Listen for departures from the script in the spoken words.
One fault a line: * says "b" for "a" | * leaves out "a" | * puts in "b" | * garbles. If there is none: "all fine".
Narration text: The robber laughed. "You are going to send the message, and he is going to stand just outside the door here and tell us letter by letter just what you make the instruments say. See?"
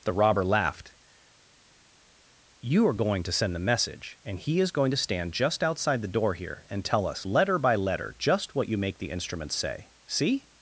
all fine